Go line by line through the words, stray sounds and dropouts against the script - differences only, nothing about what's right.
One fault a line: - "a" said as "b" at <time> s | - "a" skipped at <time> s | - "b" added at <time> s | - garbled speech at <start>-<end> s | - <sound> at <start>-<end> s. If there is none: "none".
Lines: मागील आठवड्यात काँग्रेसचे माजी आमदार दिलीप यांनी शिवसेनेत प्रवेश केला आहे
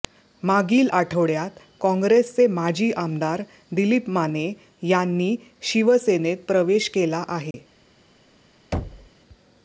- "माने" added at 4.1 s
- dropout at 7.5-7.5 s
- thud at 8.7-9.1 s